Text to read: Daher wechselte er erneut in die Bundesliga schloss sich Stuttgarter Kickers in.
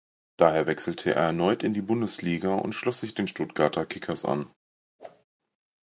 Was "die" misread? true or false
false